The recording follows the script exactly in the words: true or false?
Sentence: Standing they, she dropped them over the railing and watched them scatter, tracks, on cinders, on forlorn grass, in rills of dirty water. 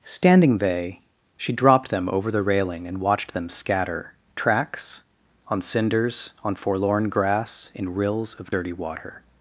true